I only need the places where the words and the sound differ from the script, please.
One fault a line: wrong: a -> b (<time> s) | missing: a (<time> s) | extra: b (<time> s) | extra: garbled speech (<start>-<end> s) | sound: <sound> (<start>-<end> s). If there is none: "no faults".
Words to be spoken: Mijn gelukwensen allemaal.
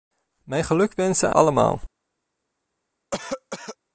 sound: cough (3.1-3.8 s)